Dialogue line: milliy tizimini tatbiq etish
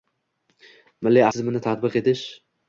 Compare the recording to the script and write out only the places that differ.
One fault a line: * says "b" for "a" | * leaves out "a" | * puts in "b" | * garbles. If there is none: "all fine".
all fine